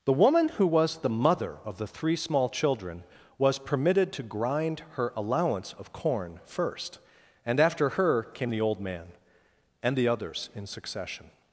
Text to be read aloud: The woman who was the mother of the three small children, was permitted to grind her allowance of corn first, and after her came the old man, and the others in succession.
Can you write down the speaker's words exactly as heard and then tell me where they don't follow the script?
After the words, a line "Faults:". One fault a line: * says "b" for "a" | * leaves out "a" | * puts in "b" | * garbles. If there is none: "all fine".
The woman who was the mother of the three small children, was permitted to grind her allowance of corn first, and after her came the old man, and the others in succession.
Faults:
all fine